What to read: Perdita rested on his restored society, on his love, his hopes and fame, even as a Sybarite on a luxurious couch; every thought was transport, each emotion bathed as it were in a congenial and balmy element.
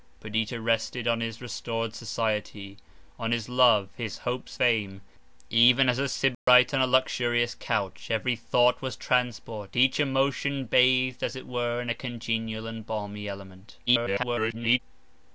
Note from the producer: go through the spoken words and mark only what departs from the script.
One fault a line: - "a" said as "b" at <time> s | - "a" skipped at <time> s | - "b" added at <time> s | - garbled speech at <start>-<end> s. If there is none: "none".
- "and" skipped at 4.6 s
- garbled speech at 13.9-14.8 s